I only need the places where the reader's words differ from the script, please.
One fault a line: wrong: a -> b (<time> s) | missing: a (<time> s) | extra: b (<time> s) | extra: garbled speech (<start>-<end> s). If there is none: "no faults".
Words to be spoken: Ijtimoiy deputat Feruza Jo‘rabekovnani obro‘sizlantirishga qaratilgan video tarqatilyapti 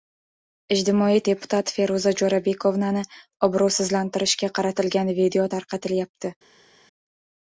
no faults